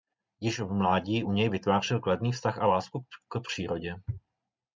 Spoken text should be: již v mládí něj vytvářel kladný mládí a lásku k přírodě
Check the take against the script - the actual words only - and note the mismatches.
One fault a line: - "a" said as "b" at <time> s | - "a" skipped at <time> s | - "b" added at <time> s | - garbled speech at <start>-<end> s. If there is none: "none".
- "u" added at 1.2 s
- "mládí" said as "vztah" at 2.3 s